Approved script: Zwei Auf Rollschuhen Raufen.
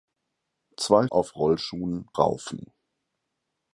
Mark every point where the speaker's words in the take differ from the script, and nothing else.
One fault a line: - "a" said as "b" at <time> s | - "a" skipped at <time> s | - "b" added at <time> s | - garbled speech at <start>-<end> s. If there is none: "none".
none